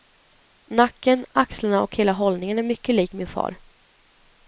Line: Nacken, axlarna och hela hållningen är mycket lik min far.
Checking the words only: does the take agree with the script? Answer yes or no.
yes